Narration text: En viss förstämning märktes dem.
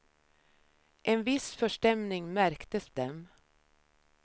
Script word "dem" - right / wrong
right